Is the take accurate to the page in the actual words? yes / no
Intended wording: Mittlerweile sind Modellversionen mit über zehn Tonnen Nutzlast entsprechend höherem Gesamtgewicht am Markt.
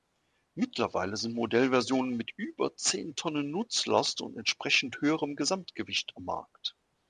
no